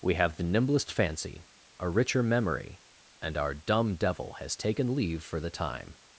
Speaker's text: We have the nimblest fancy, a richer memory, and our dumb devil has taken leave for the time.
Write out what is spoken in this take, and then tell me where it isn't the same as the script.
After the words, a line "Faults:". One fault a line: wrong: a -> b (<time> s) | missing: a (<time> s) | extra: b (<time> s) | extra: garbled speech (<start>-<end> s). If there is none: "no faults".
We have the nimblest fancy, a richer memory, and our dumb devil has taken leave for the time.
Faults:
no faults